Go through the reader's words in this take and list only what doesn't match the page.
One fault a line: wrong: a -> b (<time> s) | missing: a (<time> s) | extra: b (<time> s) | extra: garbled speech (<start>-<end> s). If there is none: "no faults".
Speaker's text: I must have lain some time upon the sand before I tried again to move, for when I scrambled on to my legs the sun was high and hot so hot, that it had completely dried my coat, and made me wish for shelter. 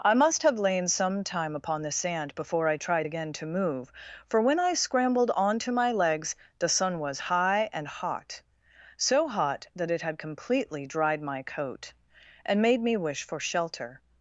no faults